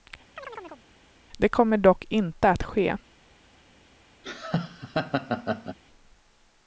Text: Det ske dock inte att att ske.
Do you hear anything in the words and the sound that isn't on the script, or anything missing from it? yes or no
yes